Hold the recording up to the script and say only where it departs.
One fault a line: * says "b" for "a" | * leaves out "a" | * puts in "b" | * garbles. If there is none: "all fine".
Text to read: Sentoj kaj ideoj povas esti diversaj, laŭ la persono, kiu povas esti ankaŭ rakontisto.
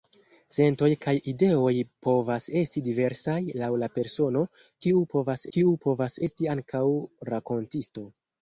* puts in "kiu povas"